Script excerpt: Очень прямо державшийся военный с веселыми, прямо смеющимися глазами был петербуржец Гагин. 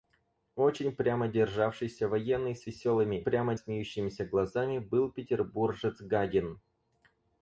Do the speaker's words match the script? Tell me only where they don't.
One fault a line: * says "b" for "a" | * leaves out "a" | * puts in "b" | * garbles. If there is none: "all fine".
all fine